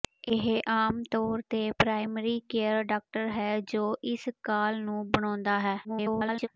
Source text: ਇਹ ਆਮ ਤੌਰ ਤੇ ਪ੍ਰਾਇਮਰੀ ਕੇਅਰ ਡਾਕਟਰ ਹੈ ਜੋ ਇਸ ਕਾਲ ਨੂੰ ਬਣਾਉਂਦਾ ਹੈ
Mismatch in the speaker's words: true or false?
true